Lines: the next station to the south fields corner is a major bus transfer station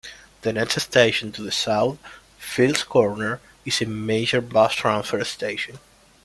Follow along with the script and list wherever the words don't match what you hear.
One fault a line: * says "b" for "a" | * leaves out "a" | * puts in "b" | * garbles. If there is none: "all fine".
all fine